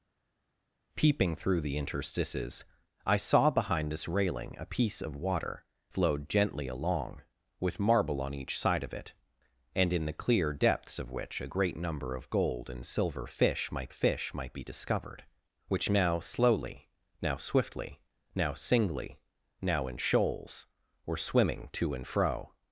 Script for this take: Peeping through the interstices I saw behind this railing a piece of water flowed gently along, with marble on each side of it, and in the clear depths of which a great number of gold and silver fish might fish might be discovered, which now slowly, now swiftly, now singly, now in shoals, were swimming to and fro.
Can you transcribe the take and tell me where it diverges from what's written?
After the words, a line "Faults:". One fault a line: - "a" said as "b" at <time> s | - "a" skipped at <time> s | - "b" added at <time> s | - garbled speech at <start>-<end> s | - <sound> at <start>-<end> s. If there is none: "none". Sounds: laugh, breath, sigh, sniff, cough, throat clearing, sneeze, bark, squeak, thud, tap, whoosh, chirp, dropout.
Peeping through the interstices I saw behind this railing a piece of water flowed gently along, with marble on each side of it, and in the clear depths of which a great number of gold and silver fish might fish might be discovered, which now slowly, now swiftly, now singly, now in shoals, were swimming to and fro.
Faults:
none